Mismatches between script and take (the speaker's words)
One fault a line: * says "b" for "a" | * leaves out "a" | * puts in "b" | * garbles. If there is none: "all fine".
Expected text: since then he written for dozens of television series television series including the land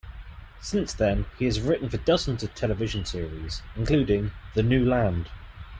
* puts in "has"
* leaves out "television series"
* puts in "new"